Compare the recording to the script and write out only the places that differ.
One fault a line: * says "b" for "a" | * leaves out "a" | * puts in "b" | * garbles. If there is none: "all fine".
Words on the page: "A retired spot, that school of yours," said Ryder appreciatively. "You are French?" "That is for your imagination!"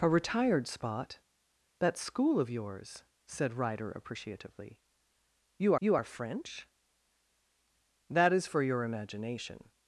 * puts in "you"